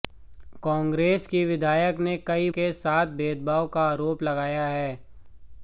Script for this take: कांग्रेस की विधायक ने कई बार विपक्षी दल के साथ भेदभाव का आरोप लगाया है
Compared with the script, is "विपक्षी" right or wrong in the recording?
wrong